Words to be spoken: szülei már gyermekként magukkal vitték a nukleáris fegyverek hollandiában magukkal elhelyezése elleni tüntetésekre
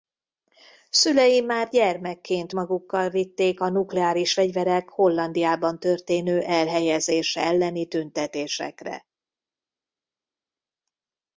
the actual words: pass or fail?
fail